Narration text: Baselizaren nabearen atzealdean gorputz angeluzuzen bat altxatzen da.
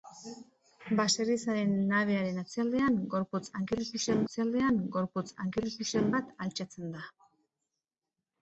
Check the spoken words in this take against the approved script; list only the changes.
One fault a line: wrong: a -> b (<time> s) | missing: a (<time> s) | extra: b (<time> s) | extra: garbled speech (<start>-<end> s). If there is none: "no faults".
extra: atzealdean gorputz angeluzuzen (4.3 s)